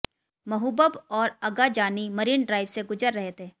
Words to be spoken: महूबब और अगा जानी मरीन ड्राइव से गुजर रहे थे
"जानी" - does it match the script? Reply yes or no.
yes